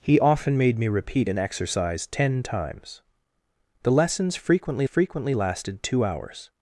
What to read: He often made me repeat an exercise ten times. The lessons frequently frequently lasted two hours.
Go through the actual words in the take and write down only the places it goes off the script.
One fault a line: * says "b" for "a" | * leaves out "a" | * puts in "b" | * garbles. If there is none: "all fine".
all fine